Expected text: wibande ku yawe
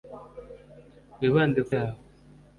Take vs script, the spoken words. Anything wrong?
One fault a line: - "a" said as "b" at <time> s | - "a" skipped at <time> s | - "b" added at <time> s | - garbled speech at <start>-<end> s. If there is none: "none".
none